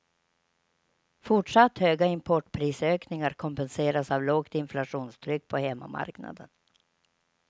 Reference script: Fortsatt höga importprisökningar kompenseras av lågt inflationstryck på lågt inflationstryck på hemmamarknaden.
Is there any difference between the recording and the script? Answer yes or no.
yes